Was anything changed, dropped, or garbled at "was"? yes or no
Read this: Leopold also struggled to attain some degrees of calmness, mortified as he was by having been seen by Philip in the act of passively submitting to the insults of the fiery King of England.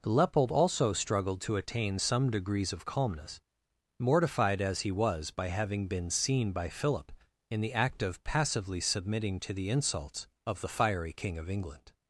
no